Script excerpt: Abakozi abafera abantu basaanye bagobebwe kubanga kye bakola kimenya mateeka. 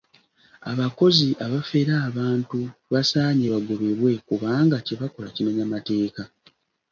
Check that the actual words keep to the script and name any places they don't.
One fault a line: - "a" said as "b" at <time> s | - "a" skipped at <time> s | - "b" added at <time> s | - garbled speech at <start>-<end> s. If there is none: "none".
none